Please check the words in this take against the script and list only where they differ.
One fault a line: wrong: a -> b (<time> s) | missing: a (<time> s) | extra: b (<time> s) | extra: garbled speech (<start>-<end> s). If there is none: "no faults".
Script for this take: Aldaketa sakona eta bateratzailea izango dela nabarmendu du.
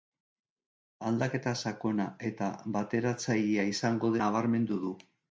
missing: dela (4.2 s)